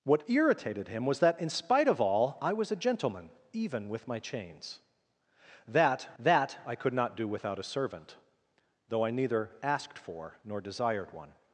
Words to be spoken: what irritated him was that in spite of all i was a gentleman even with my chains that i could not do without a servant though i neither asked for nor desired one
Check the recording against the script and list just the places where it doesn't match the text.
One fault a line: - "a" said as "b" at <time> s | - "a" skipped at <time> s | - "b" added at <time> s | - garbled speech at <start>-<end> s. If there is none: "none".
- "that" added at 6.2 s